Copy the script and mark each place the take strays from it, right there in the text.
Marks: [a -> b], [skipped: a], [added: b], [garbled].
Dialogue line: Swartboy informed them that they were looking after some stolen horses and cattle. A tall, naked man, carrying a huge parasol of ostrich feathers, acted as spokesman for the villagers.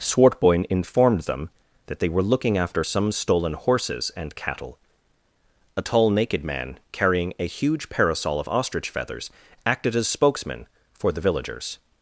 Swartboy informed them that they were looking after some stolen horses and cattle. A tall, naked man, carrying a huge parasol of ostrich feathers, acted as spokesman for the villagers.